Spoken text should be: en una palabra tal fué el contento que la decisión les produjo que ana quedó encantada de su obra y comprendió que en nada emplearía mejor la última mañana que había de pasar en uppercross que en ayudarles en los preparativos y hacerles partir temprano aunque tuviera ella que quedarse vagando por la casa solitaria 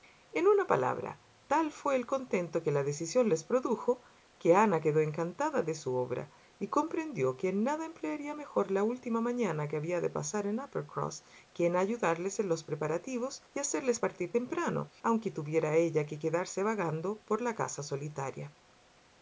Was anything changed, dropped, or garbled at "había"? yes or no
no